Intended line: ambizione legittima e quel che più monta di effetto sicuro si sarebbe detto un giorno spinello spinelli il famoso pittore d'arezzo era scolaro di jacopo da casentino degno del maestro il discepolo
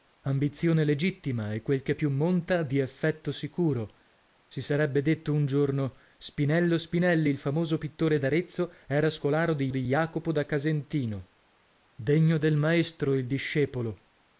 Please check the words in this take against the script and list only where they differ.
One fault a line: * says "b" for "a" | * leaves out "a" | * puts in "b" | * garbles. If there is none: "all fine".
* puts in "di"